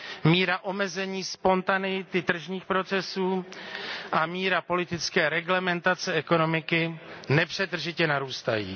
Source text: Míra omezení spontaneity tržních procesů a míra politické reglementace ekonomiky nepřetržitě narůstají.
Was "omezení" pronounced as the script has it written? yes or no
yes